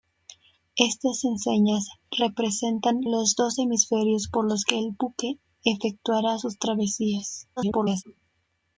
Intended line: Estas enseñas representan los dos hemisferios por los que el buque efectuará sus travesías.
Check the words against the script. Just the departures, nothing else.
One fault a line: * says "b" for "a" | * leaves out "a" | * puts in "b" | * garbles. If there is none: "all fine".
* garbles